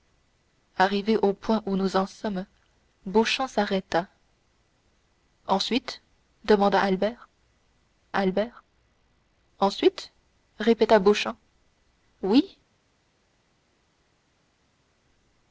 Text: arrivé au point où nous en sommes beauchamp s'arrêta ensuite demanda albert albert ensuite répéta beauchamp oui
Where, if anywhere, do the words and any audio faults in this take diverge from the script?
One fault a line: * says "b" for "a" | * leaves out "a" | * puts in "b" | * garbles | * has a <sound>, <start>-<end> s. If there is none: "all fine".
all fine